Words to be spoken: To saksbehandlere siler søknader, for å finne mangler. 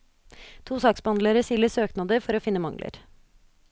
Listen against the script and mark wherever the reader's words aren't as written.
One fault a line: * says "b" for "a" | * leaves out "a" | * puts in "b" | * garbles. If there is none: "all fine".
all fine